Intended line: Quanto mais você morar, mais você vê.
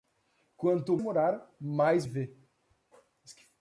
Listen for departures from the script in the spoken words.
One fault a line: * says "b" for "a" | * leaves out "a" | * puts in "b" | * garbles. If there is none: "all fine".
* leaves out "mais você"
* leaves out "você"